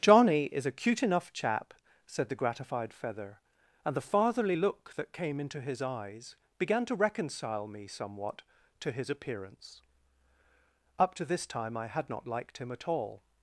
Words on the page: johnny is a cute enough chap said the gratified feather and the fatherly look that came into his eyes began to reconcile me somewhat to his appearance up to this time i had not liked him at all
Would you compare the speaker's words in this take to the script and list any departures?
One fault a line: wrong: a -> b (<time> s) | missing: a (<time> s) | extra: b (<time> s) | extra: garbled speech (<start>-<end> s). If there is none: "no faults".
no faults